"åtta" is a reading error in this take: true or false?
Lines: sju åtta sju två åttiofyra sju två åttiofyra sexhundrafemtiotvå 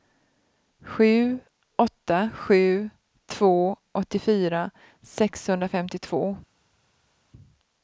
false